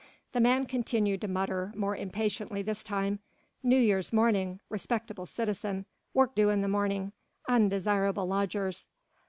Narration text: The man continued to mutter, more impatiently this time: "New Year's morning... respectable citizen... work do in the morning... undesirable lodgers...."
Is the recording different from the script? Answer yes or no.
no